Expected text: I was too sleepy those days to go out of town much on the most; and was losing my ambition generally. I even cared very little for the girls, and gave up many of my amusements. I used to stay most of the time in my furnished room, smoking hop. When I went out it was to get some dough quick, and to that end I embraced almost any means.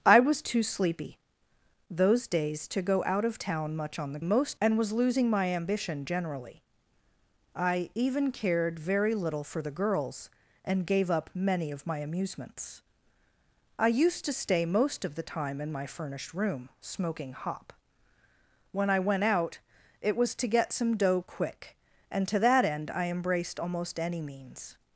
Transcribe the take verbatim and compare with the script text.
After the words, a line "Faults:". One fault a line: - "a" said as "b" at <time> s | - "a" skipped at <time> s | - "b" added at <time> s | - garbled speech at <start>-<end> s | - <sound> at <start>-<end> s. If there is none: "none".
I was too sleepy those days to go out of town much on the most; and was losing my ambition generally. I even cared very little for the girls, and gave up many of my amusements. I used to stay most of the time in my furnished room, smoking hop. When I went out it was to get some dough quick, and to that end I embraced almost any means.
Faults:
none